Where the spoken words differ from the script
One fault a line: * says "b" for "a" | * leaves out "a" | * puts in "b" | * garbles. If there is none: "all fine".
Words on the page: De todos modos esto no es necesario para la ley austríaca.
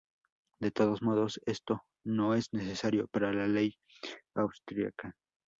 all fine